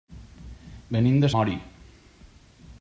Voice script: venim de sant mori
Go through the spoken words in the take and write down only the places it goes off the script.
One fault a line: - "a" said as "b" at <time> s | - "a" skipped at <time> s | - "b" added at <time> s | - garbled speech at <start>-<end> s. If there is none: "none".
- "sant" skipped at 1.3 s